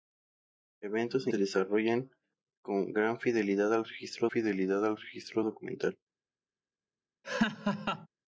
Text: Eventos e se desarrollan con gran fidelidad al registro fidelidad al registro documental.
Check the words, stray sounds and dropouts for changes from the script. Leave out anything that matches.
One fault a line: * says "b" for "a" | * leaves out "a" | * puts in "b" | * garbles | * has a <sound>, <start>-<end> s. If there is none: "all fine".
* has a laugh, 7.2-8.1 s